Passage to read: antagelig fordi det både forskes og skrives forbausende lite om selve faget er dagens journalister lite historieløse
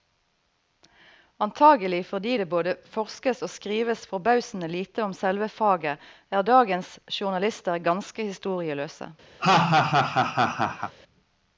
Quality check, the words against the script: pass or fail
fail